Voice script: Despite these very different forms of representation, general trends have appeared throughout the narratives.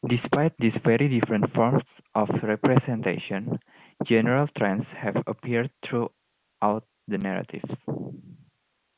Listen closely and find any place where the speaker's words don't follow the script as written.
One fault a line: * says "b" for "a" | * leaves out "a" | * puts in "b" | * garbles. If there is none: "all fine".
all fine